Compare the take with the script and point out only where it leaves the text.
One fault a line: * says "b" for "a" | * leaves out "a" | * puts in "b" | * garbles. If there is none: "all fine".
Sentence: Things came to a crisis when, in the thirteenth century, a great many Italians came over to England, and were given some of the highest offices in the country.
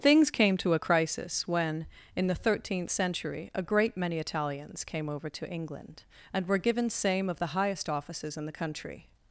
* says "same" for "some"